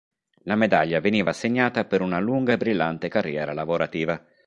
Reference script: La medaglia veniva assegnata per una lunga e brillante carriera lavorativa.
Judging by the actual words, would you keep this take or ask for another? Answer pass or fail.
pass